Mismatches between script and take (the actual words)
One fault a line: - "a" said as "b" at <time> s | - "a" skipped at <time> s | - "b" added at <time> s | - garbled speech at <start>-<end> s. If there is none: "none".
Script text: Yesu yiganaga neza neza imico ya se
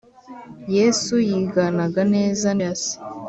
- "neza imico" skipped at 2.5 s